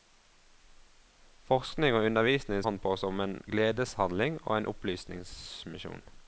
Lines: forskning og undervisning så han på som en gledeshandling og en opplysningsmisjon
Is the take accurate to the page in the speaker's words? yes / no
no